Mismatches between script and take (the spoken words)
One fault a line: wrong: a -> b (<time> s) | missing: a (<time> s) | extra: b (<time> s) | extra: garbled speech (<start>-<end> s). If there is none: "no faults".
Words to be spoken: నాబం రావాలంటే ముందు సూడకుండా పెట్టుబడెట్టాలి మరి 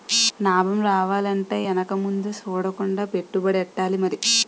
extra: ఎనక (1.6 s)